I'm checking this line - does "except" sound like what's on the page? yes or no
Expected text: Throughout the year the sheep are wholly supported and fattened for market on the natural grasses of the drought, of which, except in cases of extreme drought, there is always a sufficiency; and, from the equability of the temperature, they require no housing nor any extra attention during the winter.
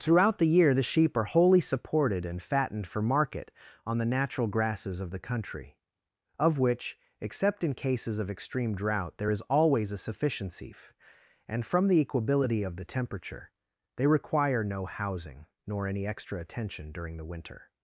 yes